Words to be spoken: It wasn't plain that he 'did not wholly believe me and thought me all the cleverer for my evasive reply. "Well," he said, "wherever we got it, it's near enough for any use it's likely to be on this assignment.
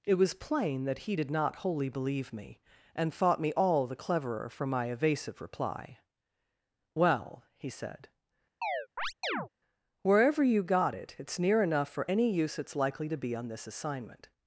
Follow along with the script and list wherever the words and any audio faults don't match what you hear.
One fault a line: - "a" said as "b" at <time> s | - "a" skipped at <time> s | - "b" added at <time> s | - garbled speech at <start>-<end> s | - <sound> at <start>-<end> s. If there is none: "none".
- "wasn't" said as "was" at 0.1 s
- chirp at 8.6-9.5 s
- "we" said as "you" at 10.4 s